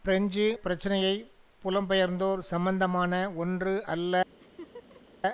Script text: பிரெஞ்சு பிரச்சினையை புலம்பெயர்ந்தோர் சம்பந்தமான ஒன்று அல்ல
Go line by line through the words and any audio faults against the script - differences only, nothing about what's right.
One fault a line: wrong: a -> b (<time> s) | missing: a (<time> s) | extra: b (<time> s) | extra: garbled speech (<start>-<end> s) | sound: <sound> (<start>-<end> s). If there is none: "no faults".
sound: laugh (4.4-5.2 s)